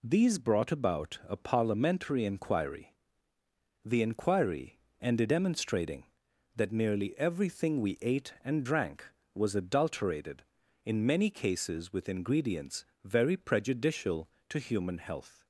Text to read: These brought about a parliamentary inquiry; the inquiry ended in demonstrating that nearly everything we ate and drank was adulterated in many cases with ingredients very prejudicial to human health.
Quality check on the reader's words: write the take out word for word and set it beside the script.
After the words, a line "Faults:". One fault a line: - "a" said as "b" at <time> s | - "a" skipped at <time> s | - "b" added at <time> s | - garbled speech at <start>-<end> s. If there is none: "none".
These brought about a parliamentary inquiry; the inquiry ended demonstrating that nearly everything we ate and drank was adulterated in many cases with ingredients very prejudicial to human health.
Faults:
- "in" skipped at 5.3 s